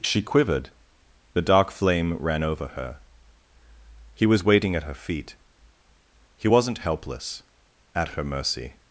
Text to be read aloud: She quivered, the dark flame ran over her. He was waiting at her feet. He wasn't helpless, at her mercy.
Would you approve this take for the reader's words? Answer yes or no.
yes